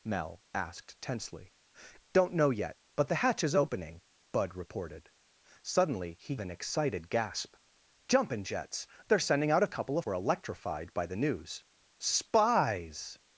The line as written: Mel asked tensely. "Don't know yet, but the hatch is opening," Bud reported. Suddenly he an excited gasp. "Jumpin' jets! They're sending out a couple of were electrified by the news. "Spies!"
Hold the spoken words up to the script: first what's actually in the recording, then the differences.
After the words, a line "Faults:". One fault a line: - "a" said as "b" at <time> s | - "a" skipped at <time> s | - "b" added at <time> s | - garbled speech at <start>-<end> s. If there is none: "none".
Mel asked tensely. "Don't know yet, but the hatch is opening," Bud reported. Suddenly he an excited gasp. "Jumpin' jets! They're sending out a couple of were electrified by the news. "Spies!"
Faults:
none